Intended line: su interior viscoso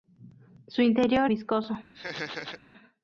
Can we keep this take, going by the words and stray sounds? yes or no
no